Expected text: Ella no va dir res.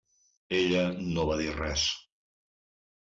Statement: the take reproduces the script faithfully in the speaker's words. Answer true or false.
true